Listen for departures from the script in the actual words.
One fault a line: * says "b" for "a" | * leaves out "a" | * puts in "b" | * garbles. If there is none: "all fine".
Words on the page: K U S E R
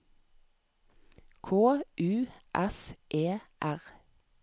all fine